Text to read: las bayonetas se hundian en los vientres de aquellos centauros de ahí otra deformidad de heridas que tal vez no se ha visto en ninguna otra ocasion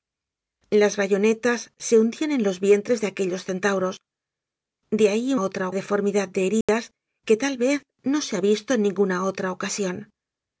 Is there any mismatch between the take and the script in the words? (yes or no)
no